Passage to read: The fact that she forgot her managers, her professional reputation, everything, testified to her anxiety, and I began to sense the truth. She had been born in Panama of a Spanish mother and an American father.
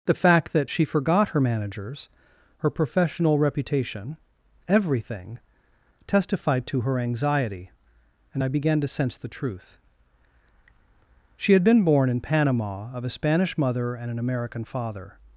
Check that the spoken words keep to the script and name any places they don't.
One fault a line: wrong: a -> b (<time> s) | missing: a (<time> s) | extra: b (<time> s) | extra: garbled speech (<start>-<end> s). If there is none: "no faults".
no faults